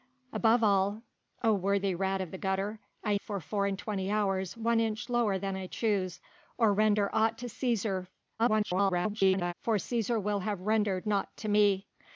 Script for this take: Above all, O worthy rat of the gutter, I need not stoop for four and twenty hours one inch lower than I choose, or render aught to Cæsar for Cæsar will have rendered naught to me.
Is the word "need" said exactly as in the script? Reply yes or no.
no